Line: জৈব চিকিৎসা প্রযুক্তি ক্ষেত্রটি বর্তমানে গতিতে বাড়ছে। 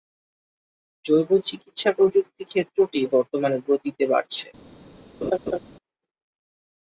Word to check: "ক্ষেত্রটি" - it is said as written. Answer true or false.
true